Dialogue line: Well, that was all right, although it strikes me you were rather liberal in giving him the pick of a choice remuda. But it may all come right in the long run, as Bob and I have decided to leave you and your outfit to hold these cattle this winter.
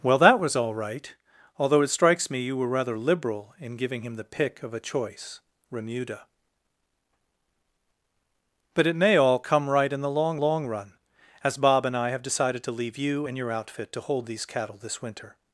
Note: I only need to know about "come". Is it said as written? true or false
true